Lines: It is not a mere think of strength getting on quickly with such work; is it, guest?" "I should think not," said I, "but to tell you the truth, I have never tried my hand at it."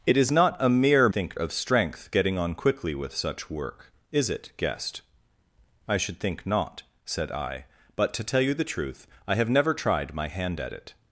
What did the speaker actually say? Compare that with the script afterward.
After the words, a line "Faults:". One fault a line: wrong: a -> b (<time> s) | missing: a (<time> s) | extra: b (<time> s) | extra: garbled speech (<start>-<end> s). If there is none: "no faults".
It is not a mere think of strength getting on quickly with such work; is it, guest?" "I should think not," said I, "but to tell you the truth, I have never tried my hand at it."
Faults:
no faults